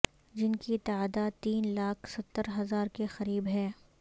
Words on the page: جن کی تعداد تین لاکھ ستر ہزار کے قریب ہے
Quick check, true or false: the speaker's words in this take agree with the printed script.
true